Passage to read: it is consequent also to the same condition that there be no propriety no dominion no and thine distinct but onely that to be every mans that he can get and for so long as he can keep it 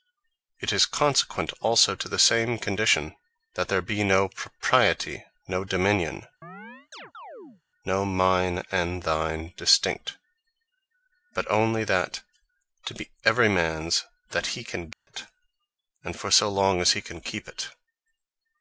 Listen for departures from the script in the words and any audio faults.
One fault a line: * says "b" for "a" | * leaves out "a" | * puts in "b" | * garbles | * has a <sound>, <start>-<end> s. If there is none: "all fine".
* has a chirp, 6.4-7.6 s
* puts in "mine"
* has a dropout, 14.9-15.1 s